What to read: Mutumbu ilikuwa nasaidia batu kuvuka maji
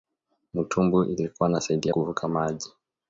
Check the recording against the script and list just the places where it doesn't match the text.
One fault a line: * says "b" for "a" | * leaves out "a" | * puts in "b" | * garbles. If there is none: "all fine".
* leaves out "batu"